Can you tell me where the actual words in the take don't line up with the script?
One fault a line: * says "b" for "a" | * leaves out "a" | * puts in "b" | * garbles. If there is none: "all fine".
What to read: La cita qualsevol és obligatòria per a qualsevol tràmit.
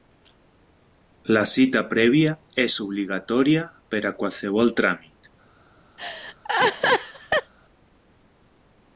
* says "prèvia" for "qualsevol"